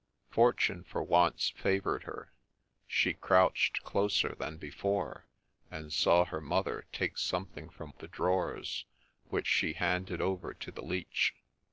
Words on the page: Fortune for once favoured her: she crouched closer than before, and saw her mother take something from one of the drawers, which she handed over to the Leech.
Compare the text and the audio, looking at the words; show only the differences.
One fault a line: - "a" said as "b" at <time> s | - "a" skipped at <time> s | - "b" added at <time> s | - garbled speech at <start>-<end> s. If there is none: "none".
- "one" skipped at 7.9 s